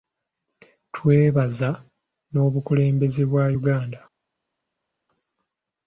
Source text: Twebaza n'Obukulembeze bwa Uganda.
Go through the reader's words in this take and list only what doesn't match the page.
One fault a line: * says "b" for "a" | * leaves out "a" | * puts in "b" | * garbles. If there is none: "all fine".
all fine